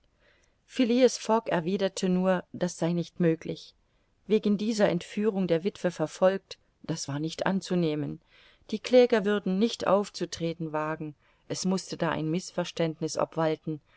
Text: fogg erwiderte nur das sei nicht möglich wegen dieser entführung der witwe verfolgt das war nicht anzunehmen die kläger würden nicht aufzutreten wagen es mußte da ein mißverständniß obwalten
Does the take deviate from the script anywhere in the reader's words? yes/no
no